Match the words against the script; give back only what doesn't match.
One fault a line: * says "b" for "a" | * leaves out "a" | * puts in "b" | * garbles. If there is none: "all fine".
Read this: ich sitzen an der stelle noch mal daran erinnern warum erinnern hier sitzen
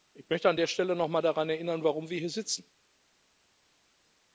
* says "möchte" for "sitzen"
* says "wir" for "erinnern"